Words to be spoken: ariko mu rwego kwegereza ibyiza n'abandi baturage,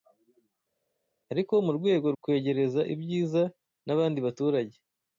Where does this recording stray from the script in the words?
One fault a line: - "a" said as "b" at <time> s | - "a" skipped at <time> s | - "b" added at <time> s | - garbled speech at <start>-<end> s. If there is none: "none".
none